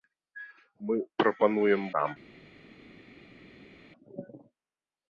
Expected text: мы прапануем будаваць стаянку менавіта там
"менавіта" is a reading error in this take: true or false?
true